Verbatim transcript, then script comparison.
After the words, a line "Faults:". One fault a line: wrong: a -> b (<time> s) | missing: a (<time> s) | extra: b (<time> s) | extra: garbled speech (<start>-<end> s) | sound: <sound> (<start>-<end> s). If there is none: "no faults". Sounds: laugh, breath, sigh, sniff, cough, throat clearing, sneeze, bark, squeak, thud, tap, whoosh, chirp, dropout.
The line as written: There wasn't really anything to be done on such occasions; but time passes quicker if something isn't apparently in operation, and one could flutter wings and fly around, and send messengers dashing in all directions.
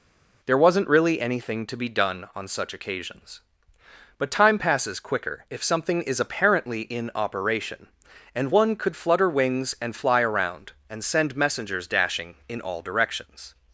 There wasn't really anything to be done on such occasions; but time passes quicker if something is apparently in operation, and one could flutter wings and fly around, and send messengers dashing in all directions.
Faults:
wrong: isn't -> is (6.0 s)